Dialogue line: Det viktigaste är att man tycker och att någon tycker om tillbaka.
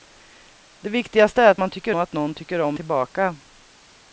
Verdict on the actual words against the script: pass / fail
pass